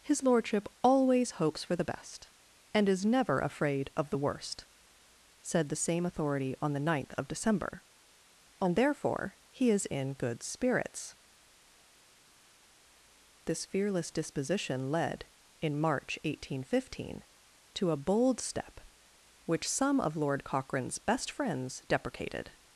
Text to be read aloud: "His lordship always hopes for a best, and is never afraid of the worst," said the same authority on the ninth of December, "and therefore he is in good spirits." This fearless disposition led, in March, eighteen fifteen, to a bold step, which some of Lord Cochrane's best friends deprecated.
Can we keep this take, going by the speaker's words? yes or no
no